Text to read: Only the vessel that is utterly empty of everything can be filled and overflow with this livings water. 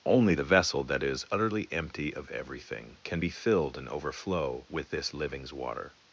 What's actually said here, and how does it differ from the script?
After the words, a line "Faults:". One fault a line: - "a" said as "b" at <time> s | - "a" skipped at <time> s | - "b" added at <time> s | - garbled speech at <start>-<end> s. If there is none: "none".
Only the vessel that is utterly empty of everything can be filled and overflow with this livings water.
Faults:
none